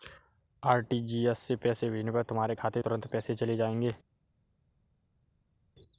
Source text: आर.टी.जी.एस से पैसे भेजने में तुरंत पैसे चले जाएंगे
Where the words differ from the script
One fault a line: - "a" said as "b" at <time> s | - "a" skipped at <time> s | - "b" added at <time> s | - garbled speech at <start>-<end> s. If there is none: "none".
- "पर तुम्हारे खाते" added at 2.1 s